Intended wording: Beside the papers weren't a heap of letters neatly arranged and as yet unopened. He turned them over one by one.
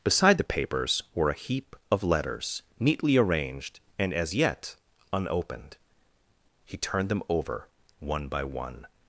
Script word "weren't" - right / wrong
wrong